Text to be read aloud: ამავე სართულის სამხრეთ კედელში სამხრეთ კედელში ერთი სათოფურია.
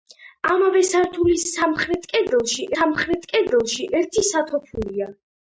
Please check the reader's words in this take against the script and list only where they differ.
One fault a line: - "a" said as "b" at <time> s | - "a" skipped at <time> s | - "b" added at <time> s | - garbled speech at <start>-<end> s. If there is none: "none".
none